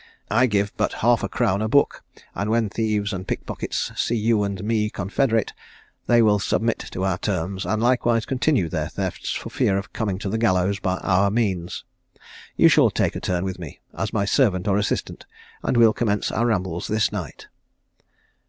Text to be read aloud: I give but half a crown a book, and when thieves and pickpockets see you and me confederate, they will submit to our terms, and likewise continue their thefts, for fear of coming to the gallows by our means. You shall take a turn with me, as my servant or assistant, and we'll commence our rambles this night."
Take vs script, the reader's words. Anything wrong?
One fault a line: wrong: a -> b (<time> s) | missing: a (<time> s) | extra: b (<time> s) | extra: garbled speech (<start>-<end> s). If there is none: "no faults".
no faults